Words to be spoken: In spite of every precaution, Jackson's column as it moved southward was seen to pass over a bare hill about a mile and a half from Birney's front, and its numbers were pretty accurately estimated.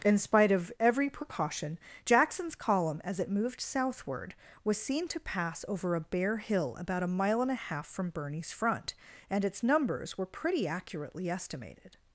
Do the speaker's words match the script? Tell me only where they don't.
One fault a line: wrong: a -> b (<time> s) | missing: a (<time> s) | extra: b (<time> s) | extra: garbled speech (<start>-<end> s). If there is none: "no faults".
no faults